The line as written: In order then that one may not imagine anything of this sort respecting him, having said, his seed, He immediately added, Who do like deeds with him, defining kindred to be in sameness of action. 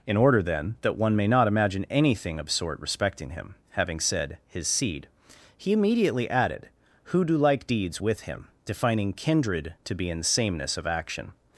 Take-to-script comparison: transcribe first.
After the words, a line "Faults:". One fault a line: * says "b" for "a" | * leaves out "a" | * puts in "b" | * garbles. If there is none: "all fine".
In order then that one may not imagine anything of sort respecting him, having said, his seed, He immediately added, Who do like deeds with him, defining kindred to be in sameness of action.
Faults:
* leaves out "this"